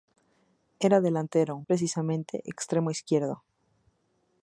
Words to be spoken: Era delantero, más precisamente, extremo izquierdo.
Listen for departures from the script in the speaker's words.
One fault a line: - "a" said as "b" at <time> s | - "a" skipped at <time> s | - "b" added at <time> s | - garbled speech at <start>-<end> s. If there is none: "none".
- "más" skipped at 1.6 s